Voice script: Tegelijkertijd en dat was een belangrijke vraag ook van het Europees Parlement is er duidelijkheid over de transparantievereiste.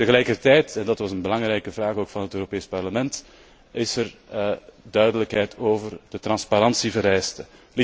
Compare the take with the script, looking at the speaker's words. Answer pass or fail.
pass